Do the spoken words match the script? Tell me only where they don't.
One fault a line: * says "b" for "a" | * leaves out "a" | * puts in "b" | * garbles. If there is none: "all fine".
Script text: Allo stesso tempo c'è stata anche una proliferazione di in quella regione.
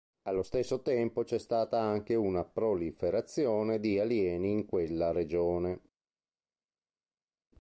* puts in "alieni"